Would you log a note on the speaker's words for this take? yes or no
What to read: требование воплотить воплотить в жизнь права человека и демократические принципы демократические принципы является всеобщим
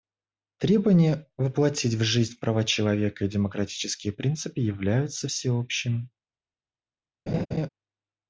yes